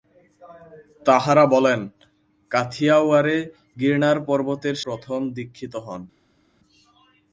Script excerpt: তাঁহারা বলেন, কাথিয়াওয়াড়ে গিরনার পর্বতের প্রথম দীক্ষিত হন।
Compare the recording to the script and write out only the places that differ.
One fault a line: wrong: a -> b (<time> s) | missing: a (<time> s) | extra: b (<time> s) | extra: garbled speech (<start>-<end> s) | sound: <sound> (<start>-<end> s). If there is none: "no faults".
no faults